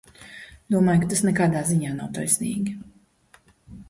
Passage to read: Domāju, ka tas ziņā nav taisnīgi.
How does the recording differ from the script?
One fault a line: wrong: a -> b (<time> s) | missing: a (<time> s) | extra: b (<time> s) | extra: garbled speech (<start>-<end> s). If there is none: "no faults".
extra: nekādā (1.3 s)